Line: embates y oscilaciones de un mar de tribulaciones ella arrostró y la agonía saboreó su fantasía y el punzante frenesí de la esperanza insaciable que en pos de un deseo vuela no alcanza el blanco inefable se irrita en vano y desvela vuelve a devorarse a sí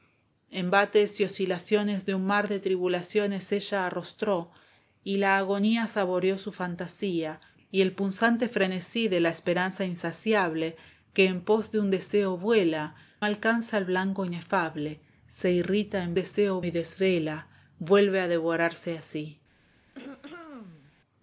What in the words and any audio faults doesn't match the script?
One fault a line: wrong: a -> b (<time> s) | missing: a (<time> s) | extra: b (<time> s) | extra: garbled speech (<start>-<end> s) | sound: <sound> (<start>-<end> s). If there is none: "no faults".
missing: no (12.9 s)
wrong: vano -> deseo (16.2 s)
sound: throat clearing (19.9-20.9 s)